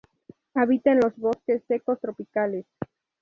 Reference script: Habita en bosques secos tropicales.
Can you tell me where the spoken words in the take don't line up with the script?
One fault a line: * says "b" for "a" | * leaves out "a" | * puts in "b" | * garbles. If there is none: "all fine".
* puts in "los"